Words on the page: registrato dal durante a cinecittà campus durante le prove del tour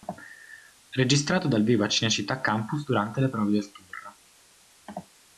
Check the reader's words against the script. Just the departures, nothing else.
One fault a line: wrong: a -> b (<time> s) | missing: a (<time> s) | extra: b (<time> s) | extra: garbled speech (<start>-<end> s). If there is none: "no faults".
wrong: durante -> vivo (1.6 s)